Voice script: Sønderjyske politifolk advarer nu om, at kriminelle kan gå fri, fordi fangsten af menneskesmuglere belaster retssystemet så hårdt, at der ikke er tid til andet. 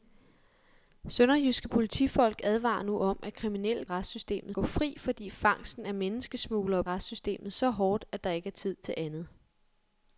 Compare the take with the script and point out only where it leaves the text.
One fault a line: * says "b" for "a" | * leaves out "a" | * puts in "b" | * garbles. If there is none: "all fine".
* says "retssystemet" for "kan"
* leaves out "belaster"